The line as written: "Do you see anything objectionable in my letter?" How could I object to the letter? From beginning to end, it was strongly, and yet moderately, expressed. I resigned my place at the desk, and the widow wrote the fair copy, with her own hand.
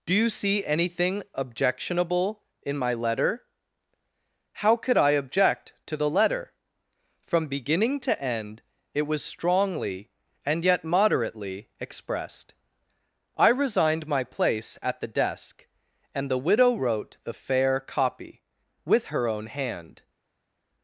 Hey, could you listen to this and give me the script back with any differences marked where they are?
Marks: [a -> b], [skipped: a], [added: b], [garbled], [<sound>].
"Do you see anything objectionable in my letter?" How could I object to the letter? From beginning to end, it was strongly, and yet moderately, expressed. I resigned my place at the desk, and the widow wrote the fair copy, with her own hand.